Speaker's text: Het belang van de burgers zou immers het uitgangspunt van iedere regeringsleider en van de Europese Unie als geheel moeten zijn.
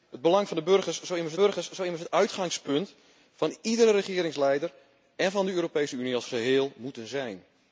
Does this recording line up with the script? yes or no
no